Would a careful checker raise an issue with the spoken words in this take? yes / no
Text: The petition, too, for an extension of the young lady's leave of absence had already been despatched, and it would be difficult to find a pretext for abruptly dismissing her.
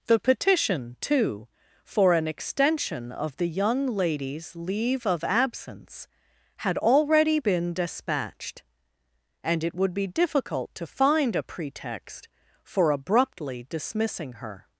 no